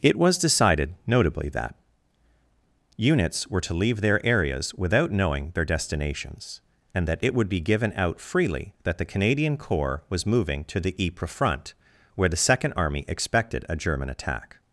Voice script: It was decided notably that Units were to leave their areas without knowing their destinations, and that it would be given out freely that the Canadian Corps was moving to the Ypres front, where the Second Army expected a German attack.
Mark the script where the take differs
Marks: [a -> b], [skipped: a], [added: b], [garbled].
It was decided notably that Units were to leave their areas without knowing their destinations, and that it would be given out freely that the Canadian Corps was moving to the Ypres front, where the Second Army expected a German attack.